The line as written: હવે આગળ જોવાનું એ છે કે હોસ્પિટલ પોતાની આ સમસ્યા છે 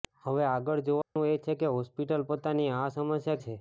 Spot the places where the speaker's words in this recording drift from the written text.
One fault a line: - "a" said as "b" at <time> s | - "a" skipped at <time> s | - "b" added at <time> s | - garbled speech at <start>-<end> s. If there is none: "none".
none